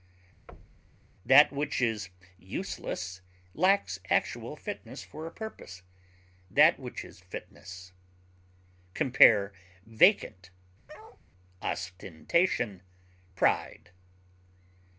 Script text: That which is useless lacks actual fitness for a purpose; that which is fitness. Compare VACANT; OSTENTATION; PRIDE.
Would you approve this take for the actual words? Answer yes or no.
yes